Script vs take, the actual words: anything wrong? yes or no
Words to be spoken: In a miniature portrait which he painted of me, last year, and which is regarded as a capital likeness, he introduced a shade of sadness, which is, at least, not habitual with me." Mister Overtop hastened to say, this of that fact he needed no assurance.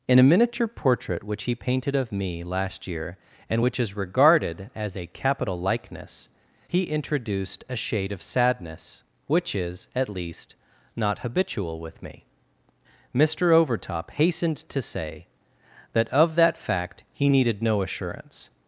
yes